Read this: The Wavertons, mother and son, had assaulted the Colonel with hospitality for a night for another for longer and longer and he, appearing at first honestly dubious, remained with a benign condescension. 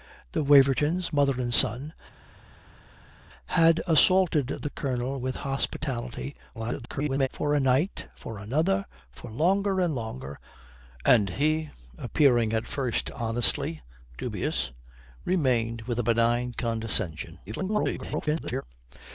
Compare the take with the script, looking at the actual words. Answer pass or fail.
fail